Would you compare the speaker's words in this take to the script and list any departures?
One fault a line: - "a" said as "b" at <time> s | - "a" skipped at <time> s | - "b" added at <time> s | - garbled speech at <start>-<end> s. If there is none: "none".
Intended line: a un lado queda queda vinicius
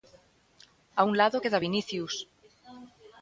- "queda" skipped at 1.6 s